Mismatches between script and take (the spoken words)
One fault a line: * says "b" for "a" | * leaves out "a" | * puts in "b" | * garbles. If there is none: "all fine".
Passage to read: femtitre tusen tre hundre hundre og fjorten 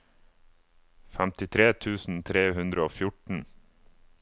* leaves out "hundre"